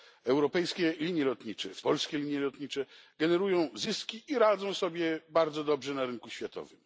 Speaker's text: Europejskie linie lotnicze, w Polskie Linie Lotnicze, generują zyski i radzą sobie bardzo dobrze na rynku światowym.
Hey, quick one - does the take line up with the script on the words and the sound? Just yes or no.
yes